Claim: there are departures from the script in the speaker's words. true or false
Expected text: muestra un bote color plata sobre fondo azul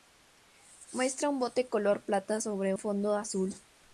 false